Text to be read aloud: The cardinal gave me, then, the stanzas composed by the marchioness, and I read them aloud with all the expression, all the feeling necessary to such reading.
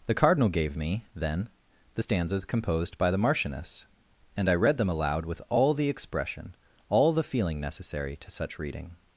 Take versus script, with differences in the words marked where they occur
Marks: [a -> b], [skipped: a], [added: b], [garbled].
The cardinal gave me, then, the stanzas composed by the marchioness, and I read them aloud with all the expression, all the feeling necessary to such reading.